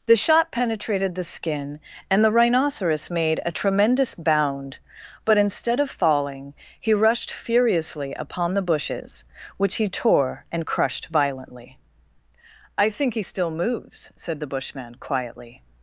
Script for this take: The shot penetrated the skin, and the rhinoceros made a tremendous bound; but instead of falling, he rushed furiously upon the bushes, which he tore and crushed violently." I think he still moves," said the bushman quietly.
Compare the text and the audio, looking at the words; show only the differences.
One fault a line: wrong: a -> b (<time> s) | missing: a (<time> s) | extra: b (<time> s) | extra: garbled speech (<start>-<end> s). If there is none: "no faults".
no faults